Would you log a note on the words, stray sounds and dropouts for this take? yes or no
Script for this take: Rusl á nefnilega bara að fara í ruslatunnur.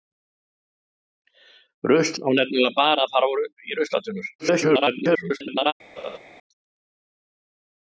yes